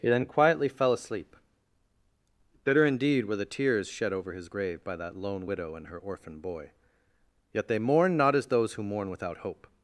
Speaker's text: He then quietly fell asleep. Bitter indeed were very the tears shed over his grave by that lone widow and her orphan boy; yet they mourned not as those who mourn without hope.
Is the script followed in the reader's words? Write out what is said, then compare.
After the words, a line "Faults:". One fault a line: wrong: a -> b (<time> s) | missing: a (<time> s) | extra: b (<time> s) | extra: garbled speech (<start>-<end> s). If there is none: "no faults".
He then quietly fell asleep. Bitter indeed were the tears shed over his grave by that lone widow and her orphan boy; yet they mourned not as those who mourn without hope.
Faults:
missing: very (3.4 s)